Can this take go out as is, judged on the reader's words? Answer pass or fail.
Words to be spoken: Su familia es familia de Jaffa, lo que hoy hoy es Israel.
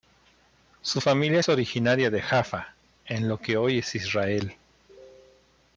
fail